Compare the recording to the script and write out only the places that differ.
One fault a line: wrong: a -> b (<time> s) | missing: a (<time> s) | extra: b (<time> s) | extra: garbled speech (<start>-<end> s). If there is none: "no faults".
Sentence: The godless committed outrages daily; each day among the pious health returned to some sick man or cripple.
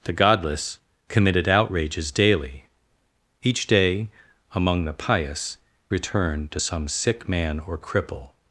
missing: health (5.6 s)